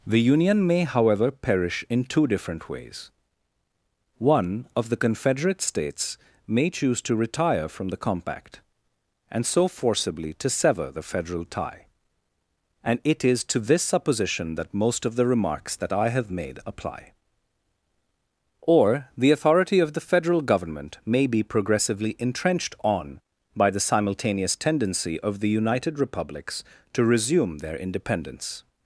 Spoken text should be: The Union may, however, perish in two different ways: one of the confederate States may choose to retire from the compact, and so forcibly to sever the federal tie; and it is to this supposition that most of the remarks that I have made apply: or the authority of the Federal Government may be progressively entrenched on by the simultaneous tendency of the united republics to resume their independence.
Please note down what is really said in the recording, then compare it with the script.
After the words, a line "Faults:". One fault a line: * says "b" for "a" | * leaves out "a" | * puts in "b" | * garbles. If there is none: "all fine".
The Union may, however, perish in two different ways: one of the confederate States may choose to retire from the compact, and so forcibly to sever the federal tie; and it is to this supposition that most of the remarks that I have made apply: or the authority of the Federal Government may be progressively entrenched on by the simultaneous tendency of the united republics to resume their independence.
Faults:
all fine